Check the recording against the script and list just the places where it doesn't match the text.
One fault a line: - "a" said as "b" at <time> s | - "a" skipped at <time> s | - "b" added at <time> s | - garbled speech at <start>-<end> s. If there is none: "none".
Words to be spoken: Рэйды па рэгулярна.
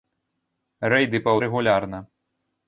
none